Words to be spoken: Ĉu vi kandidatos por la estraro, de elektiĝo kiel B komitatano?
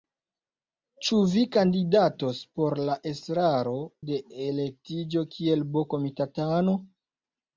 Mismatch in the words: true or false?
false